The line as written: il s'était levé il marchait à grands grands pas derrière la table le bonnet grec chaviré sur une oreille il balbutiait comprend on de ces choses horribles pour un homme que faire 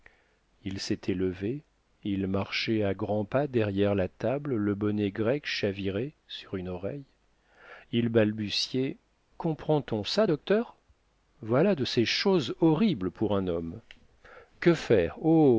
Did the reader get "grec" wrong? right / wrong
right